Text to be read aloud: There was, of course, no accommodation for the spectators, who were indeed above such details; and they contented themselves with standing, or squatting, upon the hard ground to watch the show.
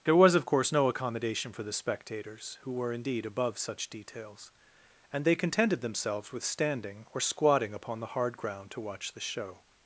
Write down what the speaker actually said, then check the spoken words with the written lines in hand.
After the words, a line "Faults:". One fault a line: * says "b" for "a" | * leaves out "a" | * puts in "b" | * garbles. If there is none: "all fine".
There was, of course, no accommodation for the spectators, who were indeed above such details; and they contented themselves with standing, or squatting, upon the hard ground to watch the show.
Faults:
all fine